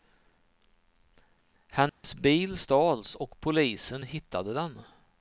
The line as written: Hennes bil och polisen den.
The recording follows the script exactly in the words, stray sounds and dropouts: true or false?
false